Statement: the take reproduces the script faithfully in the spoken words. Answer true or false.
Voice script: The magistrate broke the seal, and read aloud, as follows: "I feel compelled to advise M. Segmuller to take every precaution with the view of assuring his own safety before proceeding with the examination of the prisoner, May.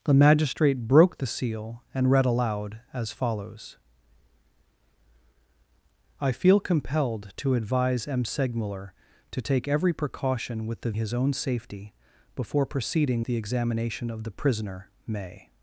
false